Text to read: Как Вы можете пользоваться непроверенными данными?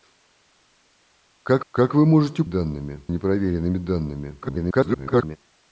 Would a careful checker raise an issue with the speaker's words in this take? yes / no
yes